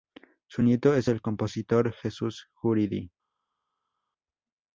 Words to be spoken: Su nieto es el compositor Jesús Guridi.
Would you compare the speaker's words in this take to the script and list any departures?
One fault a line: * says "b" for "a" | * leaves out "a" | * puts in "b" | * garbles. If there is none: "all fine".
all fine